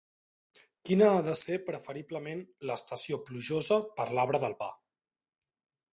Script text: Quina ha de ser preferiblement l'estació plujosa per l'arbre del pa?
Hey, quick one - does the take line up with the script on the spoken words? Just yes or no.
yes